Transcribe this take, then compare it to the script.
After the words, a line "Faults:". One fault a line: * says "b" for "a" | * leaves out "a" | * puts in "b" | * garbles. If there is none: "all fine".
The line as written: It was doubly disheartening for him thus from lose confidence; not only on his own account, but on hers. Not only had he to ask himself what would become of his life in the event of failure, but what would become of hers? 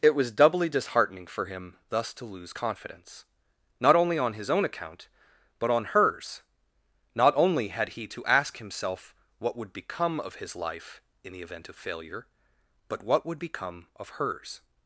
It was doubly disheartening for him thus to lose confidence; not only on his own account, but on hers. Not only had he to ask himself what would become of his life in the event of failure, but what would become of hers?
Faults:
* says "to" for "from"